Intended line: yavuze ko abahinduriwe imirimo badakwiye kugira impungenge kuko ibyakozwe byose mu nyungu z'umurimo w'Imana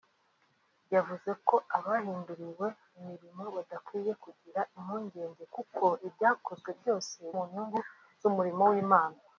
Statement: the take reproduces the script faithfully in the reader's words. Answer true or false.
true